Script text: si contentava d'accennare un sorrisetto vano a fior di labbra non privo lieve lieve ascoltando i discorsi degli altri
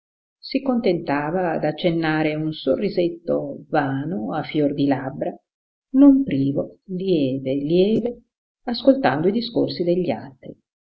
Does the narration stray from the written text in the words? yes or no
no